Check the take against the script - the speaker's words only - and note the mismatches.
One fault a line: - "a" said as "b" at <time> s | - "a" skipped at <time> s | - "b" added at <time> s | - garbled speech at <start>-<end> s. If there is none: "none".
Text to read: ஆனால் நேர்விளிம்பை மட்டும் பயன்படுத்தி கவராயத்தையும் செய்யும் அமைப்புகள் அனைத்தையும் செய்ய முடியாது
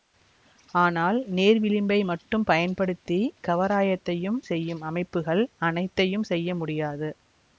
none